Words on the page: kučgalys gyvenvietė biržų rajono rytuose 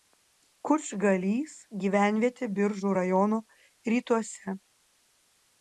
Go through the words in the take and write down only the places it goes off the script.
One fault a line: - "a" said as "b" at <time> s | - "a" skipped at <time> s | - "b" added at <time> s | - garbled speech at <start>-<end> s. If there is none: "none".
none